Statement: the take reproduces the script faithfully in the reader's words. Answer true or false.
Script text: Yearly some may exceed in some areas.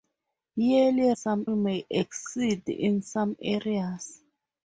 true